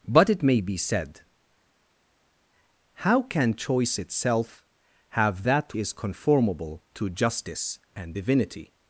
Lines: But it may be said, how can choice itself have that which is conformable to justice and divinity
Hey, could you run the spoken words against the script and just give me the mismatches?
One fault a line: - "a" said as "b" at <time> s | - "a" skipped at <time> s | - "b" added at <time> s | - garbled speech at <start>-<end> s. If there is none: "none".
- "which" skipped at 5.8 s